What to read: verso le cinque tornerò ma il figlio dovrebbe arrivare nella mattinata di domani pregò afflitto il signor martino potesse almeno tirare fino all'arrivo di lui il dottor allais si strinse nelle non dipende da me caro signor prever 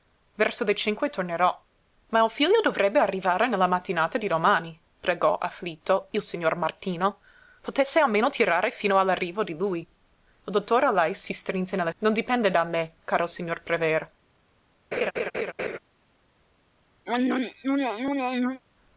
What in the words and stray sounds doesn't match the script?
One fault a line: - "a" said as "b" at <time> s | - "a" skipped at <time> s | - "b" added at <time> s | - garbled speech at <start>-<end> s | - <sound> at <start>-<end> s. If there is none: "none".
- laugh at 14.9-15.8 s
- throat clearing at 17.1-18.6 s